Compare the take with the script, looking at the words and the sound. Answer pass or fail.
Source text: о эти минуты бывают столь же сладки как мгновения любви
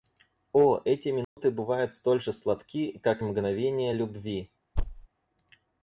fail